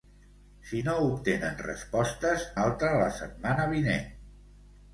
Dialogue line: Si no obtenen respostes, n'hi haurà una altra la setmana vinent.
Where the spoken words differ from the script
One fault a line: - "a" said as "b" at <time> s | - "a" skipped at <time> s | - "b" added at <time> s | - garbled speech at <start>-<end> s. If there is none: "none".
- "n'hi haurà una" skipped at 2.5 s